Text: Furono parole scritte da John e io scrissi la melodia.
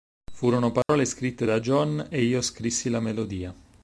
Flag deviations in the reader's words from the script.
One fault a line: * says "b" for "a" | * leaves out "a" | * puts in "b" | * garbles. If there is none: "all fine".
all fine